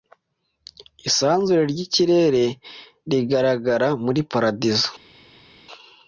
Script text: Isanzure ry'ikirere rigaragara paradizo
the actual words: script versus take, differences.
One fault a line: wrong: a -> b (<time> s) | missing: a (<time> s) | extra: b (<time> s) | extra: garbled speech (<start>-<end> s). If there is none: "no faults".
extra: muri (4.0 s)